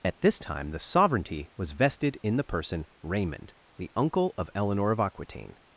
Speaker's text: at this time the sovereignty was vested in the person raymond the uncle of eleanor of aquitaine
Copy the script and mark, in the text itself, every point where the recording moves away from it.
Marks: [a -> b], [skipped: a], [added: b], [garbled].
at this time the sovereignty was vested in the person raymond the uncle of eleanor of aquitaine